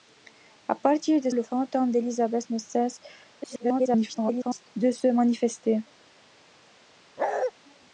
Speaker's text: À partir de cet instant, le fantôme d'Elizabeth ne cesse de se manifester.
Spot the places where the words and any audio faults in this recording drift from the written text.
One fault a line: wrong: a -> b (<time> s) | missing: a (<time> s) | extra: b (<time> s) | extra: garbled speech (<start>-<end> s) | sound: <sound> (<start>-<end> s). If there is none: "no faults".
missing: cet instant (1.3 s)
extra: garbled speech (3.4-4.7 s)
sound: bark (7.2-7.5 s)